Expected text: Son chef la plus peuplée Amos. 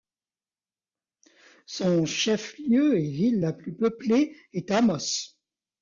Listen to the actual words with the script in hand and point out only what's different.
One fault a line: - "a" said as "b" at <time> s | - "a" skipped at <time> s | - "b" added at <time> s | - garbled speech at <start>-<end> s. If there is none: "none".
- "lieu et ville" added at 2.6 s
- "est" added at 4.5 s